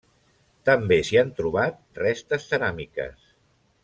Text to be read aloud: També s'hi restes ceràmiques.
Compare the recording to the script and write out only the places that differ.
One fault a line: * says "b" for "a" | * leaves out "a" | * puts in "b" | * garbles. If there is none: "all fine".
* puts in "han trobat"